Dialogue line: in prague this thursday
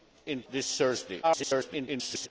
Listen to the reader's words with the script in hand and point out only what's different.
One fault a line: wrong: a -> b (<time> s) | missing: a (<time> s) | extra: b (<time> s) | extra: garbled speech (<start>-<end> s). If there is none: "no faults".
missing: prague (0.4 s)
extra: garbled speech (1.2-2.3 s)